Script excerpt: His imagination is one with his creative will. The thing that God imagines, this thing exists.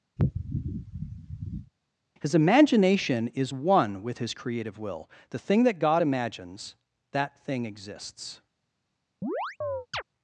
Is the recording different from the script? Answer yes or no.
yes